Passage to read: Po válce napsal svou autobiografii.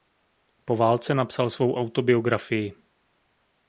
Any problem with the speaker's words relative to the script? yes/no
no